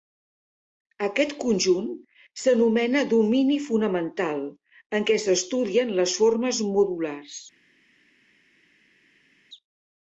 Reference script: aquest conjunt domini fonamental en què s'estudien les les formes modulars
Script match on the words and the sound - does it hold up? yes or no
no